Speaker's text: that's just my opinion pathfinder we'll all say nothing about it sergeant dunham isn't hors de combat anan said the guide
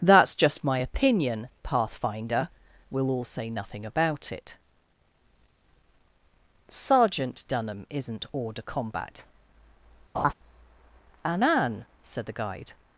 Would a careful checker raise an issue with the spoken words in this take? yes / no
no